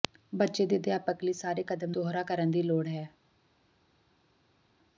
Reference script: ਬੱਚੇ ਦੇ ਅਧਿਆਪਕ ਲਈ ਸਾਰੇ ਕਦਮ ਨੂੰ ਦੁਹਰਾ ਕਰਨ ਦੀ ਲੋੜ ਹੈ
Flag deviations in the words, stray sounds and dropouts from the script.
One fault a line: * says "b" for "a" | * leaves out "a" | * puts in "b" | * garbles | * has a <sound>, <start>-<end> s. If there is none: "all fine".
* leaves out "ਨੂੰ"